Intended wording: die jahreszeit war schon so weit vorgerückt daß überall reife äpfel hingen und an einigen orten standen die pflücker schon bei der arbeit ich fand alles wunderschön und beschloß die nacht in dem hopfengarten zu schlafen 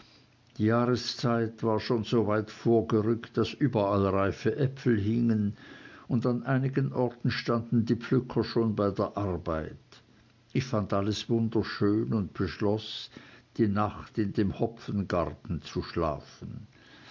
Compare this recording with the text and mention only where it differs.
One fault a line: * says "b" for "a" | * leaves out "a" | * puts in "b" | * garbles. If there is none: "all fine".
all fine